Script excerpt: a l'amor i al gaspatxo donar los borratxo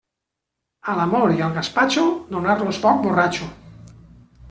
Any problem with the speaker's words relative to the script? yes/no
yes